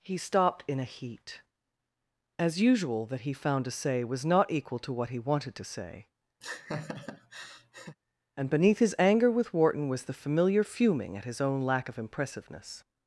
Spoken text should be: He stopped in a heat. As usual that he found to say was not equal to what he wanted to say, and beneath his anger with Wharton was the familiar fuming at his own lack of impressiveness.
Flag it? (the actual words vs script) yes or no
no